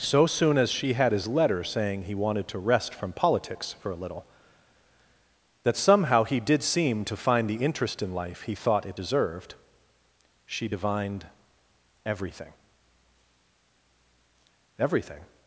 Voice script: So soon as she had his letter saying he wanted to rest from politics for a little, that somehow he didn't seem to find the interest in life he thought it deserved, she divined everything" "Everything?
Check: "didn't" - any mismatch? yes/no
yes